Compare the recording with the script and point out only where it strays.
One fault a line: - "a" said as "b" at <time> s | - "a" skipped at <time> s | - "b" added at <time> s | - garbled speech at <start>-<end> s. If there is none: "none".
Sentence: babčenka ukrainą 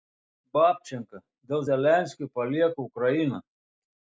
- "dėl zelenskio palieka" added at 1.5 s